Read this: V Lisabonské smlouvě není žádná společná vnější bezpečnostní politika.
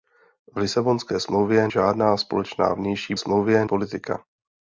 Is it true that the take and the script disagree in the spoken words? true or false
true